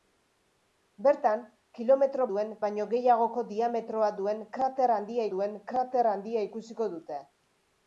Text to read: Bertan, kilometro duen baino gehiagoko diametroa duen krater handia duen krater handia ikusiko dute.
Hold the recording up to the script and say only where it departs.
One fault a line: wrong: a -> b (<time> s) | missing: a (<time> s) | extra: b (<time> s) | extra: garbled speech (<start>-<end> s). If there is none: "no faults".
no faults